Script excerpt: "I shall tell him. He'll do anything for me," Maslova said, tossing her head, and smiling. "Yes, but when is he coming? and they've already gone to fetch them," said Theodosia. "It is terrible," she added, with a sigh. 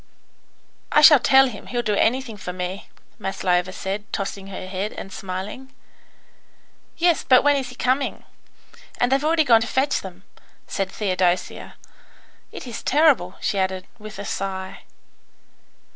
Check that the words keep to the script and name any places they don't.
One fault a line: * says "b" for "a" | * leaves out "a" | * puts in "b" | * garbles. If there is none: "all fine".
all fine